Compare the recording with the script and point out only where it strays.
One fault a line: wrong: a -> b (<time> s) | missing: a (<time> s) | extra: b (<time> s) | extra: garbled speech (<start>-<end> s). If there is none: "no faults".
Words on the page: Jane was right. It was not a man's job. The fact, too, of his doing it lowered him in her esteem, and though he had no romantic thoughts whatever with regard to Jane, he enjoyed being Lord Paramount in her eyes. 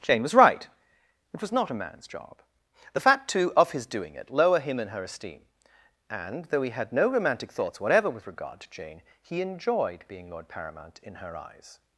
wrong: lowered -> lower (4.3 s)